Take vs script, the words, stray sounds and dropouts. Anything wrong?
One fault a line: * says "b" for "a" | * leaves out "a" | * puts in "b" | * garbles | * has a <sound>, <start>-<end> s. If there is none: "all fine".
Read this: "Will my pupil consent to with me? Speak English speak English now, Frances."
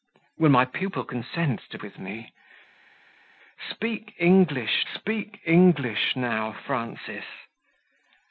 all fine